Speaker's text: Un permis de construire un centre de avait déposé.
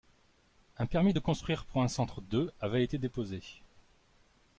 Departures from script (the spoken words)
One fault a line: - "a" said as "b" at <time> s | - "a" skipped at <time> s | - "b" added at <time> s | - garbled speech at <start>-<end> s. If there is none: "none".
- "pour" added at 1.6 s
- "été" added at 2.8 s